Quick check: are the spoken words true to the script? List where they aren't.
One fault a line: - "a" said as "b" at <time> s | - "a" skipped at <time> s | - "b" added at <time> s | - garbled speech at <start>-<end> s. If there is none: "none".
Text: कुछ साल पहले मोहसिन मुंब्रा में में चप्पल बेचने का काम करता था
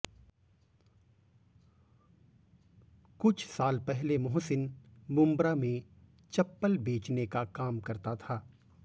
- "में" skipped at 5.8 s